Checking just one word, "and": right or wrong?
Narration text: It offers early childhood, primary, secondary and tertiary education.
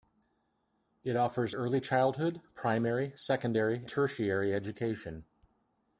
wrong